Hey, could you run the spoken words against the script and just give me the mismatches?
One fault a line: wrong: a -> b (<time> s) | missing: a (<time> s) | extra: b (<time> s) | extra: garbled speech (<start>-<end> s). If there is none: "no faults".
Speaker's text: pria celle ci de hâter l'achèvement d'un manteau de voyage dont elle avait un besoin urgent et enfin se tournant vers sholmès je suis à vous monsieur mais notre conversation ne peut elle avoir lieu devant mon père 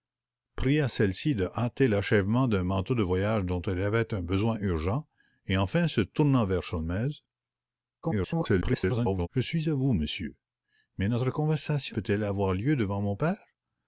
extra: garbled speech (8.0-9.3 s)
missing: ne (12.0 s)